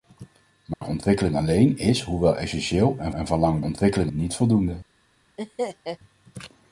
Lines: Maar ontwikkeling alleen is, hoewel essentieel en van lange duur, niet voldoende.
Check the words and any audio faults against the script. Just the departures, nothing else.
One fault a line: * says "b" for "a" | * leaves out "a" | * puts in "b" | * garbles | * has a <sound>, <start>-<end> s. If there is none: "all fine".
* has a dropout, 0.7-0.8 s
* puts in "en"
* says "ontwikkeling" for "duur"
* has a laugh, 5.4-6.0 s